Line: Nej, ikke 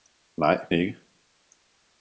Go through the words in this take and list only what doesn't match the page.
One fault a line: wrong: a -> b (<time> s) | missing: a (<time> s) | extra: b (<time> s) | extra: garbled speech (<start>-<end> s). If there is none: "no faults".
no faults